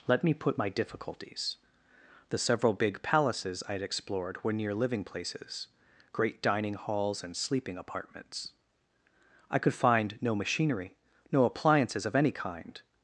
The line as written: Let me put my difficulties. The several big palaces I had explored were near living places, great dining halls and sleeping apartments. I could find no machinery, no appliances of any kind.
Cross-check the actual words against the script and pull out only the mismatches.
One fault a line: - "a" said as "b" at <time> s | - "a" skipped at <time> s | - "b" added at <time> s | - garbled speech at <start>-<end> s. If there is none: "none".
none